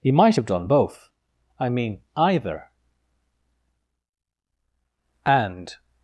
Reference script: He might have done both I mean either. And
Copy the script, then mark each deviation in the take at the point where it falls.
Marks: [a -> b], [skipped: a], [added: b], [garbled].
He might have done both I mean either. And